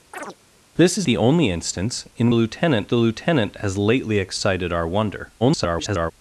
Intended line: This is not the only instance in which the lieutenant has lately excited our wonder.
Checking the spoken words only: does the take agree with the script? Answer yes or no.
no